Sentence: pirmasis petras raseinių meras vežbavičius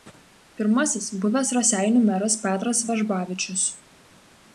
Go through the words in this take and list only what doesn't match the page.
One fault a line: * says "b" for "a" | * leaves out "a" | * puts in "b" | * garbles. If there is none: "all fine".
* says "buvęs" for "petras"
* puts in "petras"